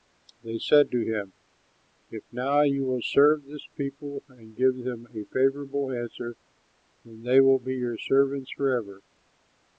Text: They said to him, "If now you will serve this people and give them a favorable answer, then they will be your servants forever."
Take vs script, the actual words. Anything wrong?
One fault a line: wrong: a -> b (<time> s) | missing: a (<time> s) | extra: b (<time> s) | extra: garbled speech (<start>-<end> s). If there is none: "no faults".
no faults